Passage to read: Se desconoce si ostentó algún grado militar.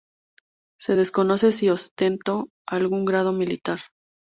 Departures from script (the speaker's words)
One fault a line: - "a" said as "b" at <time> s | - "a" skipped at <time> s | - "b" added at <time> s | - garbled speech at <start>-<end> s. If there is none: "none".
none